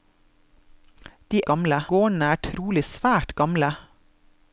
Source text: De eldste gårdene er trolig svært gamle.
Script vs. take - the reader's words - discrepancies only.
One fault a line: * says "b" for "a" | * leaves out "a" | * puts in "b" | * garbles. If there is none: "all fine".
* says "gamle" for "eldste"